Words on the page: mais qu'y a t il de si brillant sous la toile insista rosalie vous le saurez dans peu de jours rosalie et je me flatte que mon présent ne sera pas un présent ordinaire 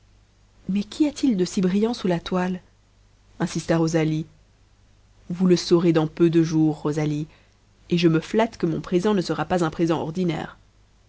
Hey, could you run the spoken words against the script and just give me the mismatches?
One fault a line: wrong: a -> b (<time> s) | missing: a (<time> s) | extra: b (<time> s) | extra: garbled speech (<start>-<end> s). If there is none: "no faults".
no faults